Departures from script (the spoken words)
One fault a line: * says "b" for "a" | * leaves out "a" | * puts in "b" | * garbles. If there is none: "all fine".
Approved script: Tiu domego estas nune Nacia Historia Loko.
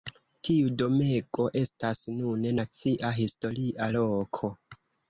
all fine